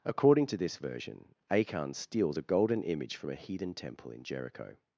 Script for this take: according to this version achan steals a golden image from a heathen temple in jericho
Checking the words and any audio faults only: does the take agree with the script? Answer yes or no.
yes